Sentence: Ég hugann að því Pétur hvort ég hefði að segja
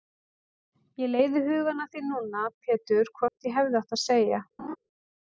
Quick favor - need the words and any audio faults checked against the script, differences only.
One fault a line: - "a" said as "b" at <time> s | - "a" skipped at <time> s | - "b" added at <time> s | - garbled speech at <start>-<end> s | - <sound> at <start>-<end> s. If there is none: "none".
- "leiði" added at 1.1 s
- "núna" added at 2.1 s
- dropout at 3.3-3.4 s
- "átt" added at 3.8 s
- laugh at 4.6-4.8 s